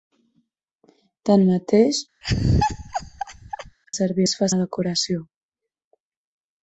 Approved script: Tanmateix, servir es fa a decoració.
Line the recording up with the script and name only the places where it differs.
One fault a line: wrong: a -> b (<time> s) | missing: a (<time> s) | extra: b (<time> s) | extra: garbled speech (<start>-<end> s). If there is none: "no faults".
no faults